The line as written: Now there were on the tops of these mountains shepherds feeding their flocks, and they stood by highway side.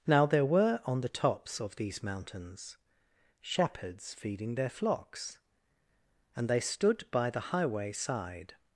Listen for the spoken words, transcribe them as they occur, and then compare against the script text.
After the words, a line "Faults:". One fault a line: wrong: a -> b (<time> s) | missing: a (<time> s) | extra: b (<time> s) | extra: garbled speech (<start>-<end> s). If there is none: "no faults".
Now there were on the tops of these mountains shepherds feeding their flocks, and they stood by the highway side.
Faults:
extra: the (7.3 s)